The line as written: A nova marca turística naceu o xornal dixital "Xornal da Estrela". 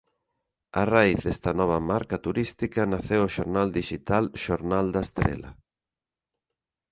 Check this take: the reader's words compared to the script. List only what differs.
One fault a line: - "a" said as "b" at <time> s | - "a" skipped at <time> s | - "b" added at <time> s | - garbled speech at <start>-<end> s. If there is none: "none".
- "raíz desta" added at 0.9 s